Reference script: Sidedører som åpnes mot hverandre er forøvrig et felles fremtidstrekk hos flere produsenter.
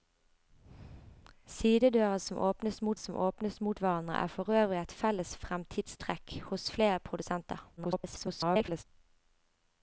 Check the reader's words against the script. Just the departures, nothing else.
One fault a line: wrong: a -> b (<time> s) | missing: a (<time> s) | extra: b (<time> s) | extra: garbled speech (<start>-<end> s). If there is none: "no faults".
extra: som åpnes mot (2.9 s)
extra: garbled speech (7.8-8.8 s)